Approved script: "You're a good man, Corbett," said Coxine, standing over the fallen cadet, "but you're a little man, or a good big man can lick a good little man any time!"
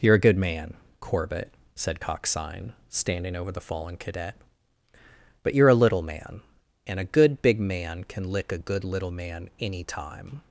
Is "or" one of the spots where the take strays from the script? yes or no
yes